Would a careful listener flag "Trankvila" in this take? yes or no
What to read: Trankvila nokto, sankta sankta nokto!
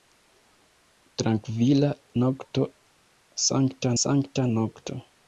no